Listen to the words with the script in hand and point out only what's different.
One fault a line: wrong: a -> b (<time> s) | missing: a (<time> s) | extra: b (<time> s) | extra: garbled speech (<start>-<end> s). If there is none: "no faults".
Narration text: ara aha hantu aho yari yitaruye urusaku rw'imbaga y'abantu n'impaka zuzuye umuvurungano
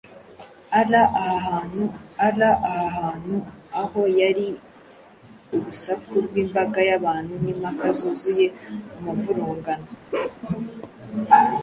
extra: ara aha hantu (2.3 s)
missing: yitaruye (4.5 s)